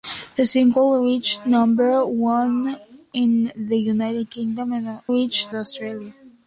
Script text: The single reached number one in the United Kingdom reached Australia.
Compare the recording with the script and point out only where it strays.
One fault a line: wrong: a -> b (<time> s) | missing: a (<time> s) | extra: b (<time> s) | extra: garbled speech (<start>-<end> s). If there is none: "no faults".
no faults